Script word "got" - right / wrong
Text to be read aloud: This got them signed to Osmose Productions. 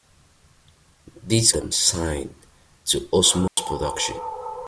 wrong